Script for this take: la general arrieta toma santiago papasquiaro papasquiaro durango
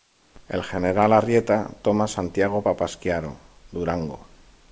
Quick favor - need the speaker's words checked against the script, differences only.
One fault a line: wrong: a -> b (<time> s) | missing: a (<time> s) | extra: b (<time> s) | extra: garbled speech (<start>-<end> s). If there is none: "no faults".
wrong: la -> el (0.5 s)
missing: papasquiaro (3.3 s)